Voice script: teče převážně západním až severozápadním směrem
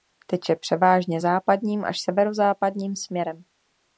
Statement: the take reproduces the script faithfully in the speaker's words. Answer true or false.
true